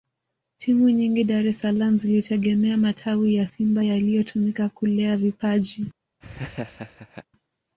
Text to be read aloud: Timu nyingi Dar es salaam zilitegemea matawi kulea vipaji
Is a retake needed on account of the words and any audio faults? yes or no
yes